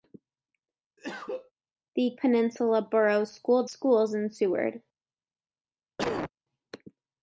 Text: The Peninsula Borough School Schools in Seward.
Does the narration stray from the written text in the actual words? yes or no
no